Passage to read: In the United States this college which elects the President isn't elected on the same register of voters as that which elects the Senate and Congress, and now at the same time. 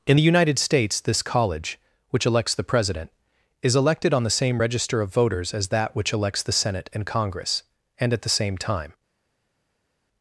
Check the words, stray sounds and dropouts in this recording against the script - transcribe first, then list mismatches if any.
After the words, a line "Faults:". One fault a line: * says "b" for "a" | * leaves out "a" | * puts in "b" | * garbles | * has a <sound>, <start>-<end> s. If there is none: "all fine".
In the United States this college which elects the President is elected on the same register of voters as that which elects the Senate and Congress, and at the same time.
Faults:
* says "is" for "isn't"
* leaves out "now"